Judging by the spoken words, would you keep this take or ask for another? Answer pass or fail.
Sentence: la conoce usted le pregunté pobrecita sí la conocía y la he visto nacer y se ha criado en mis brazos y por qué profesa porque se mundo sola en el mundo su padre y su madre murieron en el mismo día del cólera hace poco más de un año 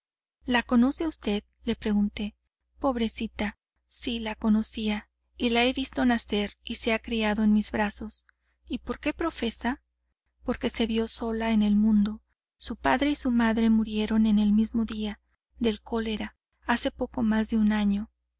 fail